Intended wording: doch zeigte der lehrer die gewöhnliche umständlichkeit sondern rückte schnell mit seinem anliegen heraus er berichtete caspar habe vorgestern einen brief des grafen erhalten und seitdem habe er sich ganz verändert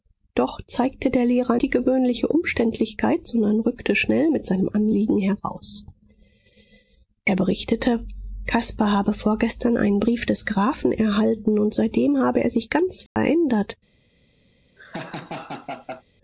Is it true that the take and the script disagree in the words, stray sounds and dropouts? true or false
true